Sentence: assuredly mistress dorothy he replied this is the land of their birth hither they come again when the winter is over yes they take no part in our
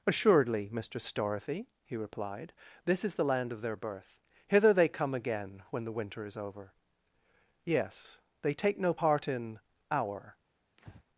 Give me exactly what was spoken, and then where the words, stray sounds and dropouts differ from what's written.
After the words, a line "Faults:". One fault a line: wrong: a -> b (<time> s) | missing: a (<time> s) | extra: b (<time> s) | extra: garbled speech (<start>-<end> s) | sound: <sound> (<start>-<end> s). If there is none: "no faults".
assuredly mistress dorothy he replied this is the land of their birth hither they come again when the winter is over yes they take no part in our
Faults:
sound: breath (10.8-11.0 s)